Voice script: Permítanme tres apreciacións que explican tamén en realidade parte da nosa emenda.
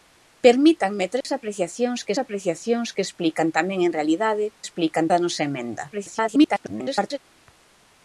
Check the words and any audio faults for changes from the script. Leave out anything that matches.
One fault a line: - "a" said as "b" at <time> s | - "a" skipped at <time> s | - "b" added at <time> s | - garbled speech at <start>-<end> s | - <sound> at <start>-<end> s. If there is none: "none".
- dropout at 1.2-1.2 s
- "apreciacións que" added at 2.2 s
- "parte" said as "explican" at 4.6 s
- garbled speech at 5.9-7.2 s